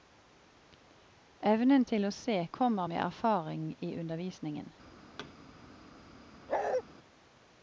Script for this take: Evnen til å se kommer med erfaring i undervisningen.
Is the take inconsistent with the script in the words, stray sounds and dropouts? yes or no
yes